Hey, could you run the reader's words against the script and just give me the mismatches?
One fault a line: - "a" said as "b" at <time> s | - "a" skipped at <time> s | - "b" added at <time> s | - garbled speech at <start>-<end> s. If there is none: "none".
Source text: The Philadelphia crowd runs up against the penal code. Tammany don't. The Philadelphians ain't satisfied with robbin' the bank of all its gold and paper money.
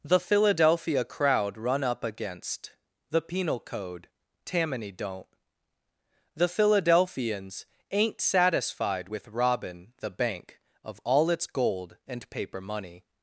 - "runs" said as "run" at 1.6 s